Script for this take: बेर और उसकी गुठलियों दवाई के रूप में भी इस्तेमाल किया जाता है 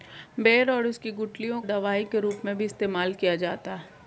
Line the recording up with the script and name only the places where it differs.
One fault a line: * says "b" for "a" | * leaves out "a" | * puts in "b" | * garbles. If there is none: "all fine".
all fine